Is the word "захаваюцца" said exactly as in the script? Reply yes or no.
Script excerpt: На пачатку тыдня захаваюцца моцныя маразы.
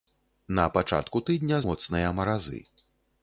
no